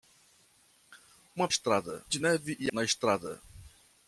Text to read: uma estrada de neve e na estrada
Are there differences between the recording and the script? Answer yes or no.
no